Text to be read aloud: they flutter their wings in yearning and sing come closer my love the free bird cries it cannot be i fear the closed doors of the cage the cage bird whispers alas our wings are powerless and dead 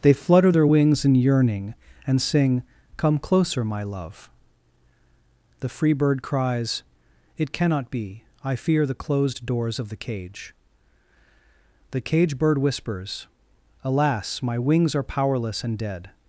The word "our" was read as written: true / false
false